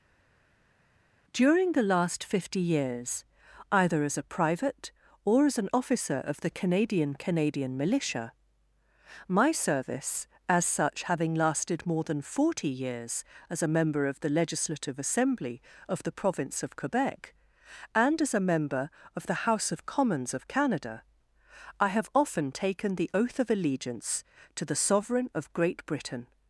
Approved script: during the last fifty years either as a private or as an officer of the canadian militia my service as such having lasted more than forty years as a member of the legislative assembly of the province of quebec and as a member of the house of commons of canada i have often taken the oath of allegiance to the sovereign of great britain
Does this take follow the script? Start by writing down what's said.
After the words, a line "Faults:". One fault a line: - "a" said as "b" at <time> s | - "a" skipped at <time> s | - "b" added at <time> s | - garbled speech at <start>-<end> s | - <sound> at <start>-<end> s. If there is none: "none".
during the last fifty years either as a private or as an officer of the canadian canadian militia my service as such having lasted more than forty years as a member of the legislative assembly of the province of quebec and as a member of the house of commons of canada i have often taken the oath of allegiance to the sovereign of great britain
Faults:
- "canadian" added at 7.1 s